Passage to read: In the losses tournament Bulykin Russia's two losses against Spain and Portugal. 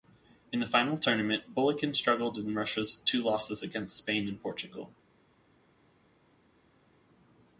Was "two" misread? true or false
false